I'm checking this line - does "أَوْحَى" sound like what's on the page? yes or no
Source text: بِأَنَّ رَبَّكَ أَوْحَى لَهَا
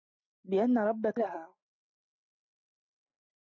no